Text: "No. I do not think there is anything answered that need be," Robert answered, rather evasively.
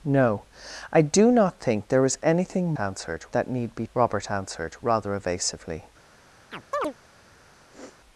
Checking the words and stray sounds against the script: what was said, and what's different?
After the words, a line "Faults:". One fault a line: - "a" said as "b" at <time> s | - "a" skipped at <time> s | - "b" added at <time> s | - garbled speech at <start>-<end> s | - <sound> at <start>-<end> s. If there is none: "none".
"No. I do not think there is anything answered that need be," Robert answered, rather evasively.
Faults:
- chirp at 6.5-6.9 s
- sniff at 7.7-8.0 s